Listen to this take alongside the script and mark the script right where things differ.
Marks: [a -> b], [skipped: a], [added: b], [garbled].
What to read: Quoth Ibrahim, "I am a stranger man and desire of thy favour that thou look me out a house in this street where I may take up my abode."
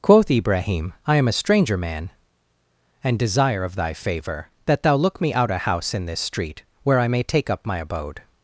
Quoth Ibrahim, "I am a stranger man and desire of thy favour that thou look me out a house in this street where I may take up my abode."